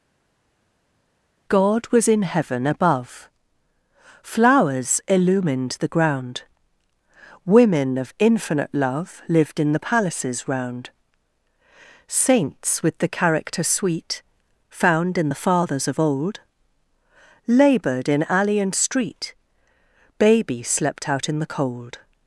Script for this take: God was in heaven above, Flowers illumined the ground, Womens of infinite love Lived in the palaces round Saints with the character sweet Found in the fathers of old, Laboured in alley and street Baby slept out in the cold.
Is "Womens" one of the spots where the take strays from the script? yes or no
yes